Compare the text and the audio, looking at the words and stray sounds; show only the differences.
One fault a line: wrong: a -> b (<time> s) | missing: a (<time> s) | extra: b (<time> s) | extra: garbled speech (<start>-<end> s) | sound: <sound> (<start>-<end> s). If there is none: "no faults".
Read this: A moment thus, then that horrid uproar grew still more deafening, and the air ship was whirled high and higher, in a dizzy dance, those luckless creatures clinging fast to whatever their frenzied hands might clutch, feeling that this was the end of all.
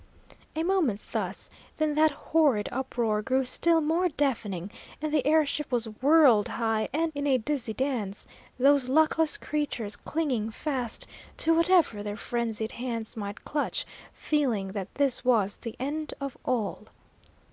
missing: higher (7.1 s)